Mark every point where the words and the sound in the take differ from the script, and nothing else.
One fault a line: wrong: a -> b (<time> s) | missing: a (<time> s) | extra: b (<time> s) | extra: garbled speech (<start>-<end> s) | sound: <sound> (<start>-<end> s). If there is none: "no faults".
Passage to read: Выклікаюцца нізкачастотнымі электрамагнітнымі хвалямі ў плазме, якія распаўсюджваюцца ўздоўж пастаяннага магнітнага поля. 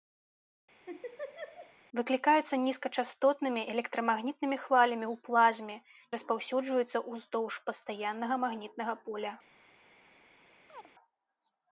sound: laugh (0.9-1.7 s)
missing: якія (5.8 s)
sound: chirp (10.7-10.9 s)